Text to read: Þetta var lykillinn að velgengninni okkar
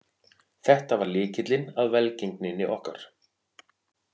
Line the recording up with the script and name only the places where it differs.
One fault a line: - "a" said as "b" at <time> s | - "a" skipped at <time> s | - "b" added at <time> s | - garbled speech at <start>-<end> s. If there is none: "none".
none